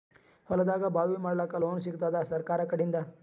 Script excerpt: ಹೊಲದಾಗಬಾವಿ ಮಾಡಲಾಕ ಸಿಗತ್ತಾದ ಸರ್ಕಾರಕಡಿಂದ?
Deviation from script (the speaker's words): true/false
true